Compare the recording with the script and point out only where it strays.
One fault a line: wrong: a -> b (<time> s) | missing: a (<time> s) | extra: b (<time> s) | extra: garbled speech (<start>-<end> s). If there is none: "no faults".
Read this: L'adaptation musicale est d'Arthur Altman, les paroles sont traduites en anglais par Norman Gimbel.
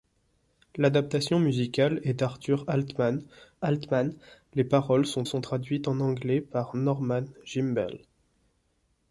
extra: Altman (3.6 s)
extra: sont (5.2 s)